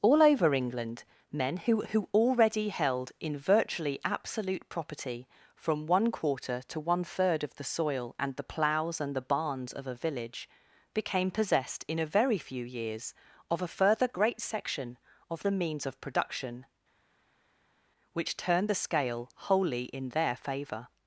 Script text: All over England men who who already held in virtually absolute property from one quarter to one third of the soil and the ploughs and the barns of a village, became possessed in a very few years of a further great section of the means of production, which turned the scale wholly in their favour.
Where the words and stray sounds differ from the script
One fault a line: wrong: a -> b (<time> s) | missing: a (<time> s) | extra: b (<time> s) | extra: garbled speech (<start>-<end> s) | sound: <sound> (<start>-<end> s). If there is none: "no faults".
no faults